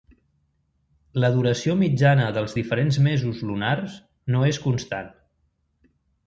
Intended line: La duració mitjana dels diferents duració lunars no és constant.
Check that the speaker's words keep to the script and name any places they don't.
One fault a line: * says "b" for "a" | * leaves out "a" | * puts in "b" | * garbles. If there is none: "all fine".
* says "mesos" for "duració"